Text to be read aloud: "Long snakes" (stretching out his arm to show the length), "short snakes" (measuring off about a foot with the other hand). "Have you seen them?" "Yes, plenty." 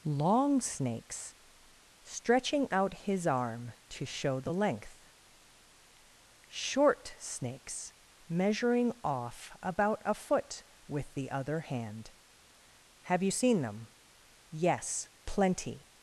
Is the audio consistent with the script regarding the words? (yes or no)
yes